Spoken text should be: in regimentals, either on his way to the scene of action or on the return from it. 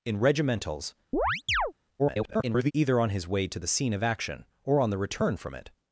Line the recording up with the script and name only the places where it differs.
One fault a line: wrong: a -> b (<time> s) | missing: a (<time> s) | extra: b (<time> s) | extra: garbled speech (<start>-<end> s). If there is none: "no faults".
extra: garbled speech (2.0-2.7 s)